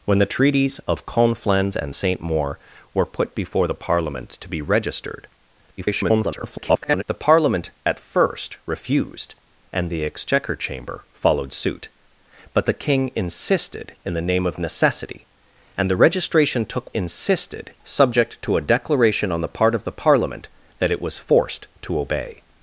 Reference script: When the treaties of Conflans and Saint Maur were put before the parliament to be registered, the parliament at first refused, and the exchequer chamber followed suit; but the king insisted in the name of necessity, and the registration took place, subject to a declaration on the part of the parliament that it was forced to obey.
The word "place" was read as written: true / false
false